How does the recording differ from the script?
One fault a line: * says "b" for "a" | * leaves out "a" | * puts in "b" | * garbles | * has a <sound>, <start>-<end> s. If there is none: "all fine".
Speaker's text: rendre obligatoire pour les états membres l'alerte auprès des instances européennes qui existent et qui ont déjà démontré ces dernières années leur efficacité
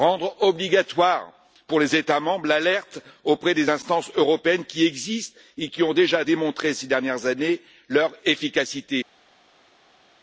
all fine